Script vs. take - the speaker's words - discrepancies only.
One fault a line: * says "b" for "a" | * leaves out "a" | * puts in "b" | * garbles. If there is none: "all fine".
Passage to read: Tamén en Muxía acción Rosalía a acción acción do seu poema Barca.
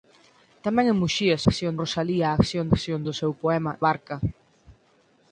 all fine